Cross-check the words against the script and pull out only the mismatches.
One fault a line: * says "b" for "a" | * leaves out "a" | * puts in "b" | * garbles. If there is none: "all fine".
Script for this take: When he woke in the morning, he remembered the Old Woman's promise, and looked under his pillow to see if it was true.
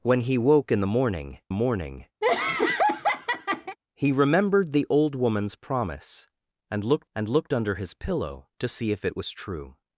* puts in "morning"
* puts in "and looked"